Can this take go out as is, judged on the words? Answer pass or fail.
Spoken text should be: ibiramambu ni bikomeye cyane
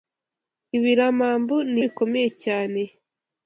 pass